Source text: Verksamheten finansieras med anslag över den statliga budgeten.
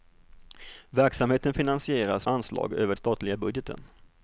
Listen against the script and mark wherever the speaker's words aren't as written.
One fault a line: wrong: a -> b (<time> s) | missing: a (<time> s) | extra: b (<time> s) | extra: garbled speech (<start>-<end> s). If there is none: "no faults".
missing: med (2.3 s)
missing: den (2.9 s)